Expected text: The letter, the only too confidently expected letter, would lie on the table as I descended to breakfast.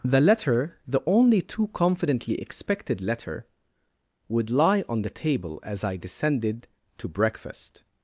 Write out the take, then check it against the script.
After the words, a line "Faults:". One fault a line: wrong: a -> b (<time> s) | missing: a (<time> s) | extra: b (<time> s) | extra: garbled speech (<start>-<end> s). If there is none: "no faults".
The letter, the only too confidently expected letter, would lie on the table as I descended to breakfast.
Faults:
no faults